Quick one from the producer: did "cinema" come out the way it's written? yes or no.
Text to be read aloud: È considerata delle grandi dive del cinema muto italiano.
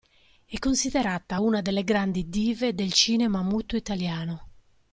yes